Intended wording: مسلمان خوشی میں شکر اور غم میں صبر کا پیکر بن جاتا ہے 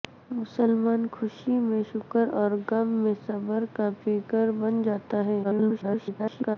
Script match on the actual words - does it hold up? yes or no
no